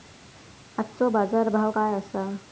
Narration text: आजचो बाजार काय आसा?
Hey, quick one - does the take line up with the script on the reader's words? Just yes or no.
no